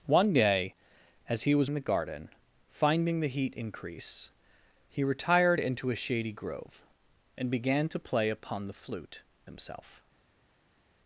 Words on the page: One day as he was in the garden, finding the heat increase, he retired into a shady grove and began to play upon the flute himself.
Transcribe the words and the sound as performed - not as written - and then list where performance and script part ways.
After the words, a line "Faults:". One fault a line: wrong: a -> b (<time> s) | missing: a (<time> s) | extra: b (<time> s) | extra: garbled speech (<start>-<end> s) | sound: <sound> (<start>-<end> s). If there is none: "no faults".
One day as he was in the garden, finding the heat increase, he retired into a shady grove and began to play upon the flute himself.
Faults:
no faults